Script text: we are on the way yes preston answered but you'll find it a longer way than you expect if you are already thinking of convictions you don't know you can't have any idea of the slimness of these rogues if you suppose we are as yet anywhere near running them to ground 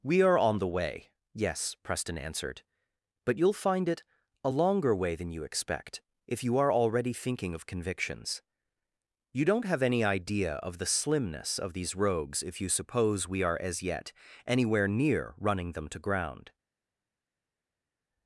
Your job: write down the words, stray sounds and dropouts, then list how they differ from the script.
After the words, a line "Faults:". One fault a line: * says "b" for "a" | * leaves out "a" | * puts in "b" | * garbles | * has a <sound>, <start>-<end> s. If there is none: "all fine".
we are on the way yes preston answered but you'll find it a longer way than you expect if you are already thinking of convictions you don't have any idea of the slimness of these rogues if you suppose we are as yet anywhere near running them to ground
Faults:
* leaves out "know you can't"